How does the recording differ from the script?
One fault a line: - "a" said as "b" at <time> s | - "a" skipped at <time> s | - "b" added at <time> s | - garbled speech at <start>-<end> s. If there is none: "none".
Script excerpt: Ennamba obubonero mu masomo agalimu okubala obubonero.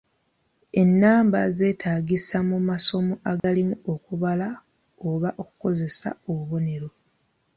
- "obubonero" said as "zeetaagisa" at 1.6 s
- "oba okukozesa" added at 5.1 s